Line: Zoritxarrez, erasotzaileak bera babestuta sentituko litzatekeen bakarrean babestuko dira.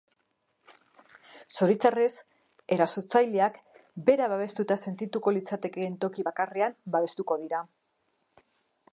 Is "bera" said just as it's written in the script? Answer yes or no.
yes